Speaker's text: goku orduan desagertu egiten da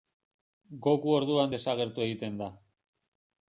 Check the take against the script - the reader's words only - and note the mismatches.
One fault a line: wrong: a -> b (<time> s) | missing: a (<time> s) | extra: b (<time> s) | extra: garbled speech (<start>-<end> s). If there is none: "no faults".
no faults